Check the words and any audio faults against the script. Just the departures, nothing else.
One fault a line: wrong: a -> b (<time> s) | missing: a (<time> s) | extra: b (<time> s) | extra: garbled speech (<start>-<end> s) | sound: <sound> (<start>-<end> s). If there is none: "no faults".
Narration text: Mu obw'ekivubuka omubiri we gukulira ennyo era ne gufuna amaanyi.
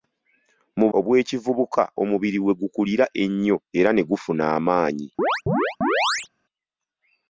sound: chirp (5.2-6.3 s)